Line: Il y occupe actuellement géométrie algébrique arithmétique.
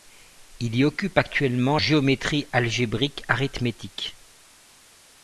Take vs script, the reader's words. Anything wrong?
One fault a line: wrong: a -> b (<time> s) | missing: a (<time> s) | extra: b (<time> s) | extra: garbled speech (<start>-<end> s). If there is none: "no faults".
no faults